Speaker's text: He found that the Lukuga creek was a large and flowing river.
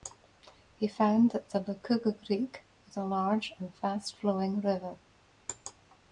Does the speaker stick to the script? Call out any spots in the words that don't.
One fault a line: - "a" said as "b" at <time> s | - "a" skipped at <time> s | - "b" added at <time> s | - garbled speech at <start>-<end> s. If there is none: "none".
- "fast" added at 3.8 s